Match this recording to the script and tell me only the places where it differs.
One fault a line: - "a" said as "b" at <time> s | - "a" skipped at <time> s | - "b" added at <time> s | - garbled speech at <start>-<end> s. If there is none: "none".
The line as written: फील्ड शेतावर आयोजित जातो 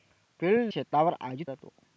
none